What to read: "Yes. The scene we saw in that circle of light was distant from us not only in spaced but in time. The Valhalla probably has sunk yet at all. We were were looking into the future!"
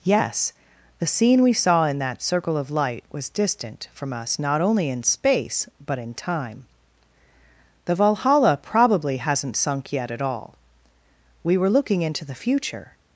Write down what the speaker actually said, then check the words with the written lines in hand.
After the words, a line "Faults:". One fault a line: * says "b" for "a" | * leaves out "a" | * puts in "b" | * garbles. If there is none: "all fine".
"Yes. The scene we saw in that circle of light was distant from us not only in space but in time. The Valhalla probably hasn't sunk yet at all. We were looking into the future!"
Faults:
* says "space" for "spaced"
* says "hasn't" for "has"
* leaves out "were"